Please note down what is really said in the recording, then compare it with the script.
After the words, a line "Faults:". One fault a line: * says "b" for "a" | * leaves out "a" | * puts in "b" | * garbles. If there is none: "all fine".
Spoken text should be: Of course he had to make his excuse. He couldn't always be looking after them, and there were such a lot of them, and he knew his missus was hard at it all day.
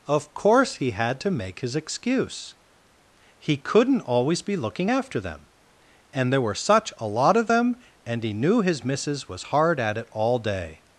Of course he had to make his excuse. He couldn't always be looking after them, and there were such a lot of them, and he knew his missus was hard at it all day.
Faults:
all fine